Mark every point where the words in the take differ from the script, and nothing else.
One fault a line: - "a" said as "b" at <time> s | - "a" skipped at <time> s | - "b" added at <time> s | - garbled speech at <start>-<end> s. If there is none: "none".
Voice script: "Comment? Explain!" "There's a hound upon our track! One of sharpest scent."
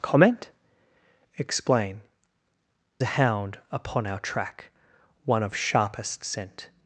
- "There's" skipped at 2.0 s